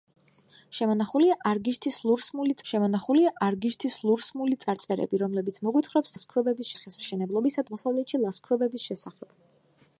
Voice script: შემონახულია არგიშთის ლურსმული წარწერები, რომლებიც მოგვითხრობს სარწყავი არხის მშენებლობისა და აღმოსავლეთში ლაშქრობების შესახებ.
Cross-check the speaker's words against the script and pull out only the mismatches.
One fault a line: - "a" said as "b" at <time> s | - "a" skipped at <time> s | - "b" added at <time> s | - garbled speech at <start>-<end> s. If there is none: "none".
- "შემონახულია არგიშთის ლურსმული" added at 2.7 s
- "სარწყავი" said as "ლაშქრობების" at 6.1 s
- "და" skipped at 7.7 s